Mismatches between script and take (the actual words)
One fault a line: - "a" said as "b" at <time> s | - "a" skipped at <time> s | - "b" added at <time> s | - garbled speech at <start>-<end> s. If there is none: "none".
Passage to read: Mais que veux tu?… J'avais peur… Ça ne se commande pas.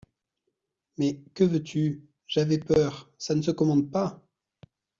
none